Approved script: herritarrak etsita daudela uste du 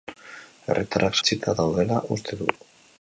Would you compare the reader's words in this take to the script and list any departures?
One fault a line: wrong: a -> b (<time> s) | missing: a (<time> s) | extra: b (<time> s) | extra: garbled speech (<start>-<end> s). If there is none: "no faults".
no faults